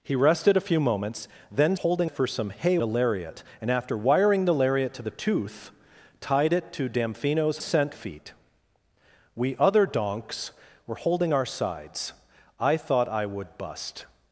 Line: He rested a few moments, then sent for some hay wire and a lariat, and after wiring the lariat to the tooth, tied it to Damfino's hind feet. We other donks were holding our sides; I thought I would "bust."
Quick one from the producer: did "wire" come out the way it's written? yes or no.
no